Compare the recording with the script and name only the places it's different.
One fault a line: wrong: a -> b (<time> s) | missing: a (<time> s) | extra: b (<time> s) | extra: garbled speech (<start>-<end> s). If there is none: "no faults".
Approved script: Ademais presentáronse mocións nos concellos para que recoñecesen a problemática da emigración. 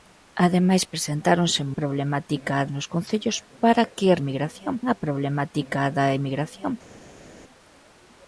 wrong: mocións -> problemática (1.8 s)
wrong: recoñecesen -> emigración (4.2 s)